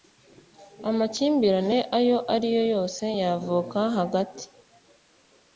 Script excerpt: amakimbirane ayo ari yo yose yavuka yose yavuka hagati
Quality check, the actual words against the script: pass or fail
fail